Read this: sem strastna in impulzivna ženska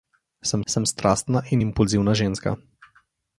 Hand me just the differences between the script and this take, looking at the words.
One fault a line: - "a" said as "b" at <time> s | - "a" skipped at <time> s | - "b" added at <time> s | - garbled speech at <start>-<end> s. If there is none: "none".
- "sem" added at 0.7 s